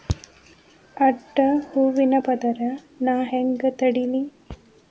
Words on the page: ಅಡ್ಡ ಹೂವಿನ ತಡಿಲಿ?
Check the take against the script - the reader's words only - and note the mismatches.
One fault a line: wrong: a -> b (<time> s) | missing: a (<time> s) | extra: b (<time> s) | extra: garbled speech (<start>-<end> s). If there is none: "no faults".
extra: ಪದರ್ ನಾ ಹೆಂಗ್ (2.2 s)